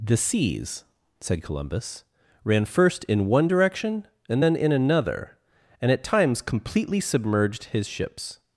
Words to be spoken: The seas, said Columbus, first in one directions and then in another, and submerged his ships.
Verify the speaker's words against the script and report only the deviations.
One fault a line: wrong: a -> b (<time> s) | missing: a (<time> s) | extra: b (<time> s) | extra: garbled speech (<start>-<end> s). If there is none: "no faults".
extra: ran (2.4 s)
wrong: directions -> direction (3.5 s)
extra: at times completely (5.9 s)